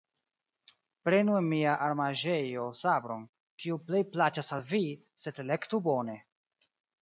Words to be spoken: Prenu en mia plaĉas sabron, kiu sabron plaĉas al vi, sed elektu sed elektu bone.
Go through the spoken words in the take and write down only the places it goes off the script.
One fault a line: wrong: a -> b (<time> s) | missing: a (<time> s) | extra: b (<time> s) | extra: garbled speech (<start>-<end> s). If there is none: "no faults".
wrong: plaĉas -> armaĵejo (1.9 s)
wrong: sabron -> plej (3.9 s)
missing: sed elektu (5.9 s)